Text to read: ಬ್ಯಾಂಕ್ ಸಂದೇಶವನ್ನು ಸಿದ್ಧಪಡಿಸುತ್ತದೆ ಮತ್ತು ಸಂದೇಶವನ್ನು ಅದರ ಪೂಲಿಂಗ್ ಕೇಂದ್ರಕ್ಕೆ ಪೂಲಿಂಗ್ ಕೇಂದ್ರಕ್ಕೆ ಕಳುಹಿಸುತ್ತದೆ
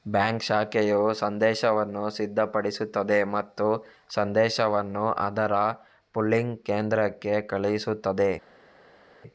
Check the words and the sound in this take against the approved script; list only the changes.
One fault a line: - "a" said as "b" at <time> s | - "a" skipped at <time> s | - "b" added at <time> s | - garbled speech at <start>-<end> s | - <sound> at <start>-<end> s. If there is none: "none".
- "ಶಾಖೆಯು" added at 0.5 s
- "ಪೂಲಿಂಗ್ ಕೇಂದ್ರಕ್ಕೆ" skipped at 7.3 s